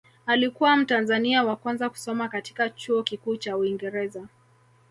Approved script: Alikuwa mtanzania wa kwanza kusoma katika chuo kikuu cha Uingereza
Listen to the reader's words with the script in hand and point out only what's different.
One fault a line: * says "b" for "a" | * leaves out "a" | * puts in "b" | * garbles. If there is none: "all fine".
all fine